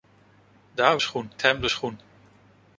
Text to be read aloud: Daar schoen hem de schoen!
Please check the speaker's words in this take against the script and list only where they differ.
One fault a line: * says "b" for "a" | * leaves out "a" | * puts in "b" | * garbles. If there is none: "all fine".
all fine